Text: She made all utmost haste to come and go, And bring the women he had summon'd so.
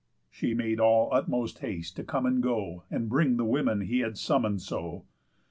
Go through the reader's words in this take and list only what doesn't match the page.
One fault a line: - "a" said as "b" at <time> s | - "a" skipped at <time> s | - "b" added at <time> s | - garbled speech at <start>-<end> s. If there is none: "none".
none